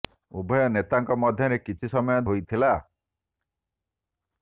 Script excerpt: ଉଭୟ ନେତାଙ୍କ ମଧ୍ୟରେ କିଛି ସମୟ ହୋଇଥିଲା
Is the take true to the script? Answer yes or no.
yes